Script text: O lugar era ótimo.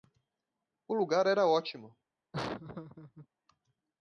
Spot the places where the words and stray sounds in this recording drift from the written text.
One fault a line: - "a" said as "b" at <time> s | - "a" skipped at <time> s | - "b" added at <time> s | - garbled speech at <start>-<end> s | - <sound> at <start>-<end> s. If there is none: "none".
- laugh at 2.3-3.3 s